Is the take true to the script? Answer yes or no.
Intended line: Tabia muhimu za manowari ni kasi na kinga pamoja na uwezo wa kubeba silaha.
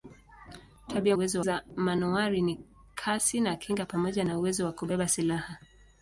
no